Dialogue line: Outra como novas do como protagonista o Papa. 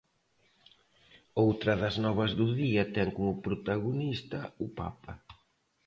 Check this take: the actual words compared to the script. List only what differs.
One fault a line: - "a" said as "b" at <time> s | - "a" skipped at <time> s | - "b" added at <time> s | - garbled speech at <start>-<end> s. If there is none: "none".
- "como" said as "das" at 1.8 s
- "día ten" added at 2.6 s